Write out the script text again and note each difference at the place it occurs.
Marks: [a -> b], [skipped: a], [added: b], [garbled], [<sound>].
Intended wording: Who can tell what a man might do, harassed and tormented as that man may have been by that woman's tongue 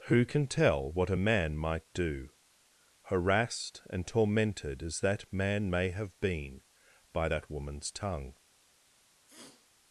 Who can tell what a man might do, harassed and tormented as that man may have been by that woman's tongue [sniff]